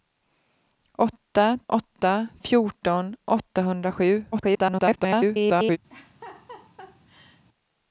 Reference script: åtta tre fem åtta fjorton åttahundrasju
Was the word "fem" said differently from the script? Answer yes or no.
yes